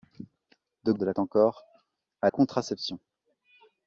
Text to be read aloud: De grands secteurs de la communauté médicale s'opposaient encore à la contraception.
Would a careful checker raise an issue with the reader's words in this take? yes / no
yes